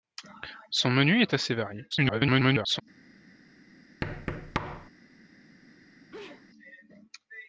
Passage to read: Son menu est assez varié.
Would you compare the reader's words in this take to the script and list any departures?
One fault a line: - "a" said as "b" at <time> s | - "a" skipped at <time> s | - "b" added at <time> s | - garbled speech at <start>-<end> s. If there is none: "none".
- garbled speech at 1.9-2.8 s